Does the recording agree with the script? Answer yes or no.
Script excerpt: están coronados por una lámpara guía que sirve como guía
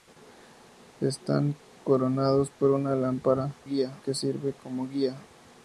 yes